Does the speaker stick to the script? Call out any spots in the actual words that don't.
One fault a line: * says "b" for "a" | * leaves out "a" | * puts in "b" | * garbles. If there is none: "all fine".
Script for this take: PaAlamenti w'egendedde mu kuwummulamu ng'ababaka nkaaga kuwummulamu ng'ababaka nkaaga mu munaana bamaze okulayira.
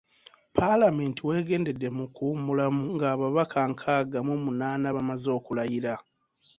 * leaves out "kuwummulamu ng'ababaka nkaaga"